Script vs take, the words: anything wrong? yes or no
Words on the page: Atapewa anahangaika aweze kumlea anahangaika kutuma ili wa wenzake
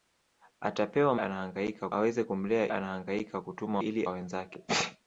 no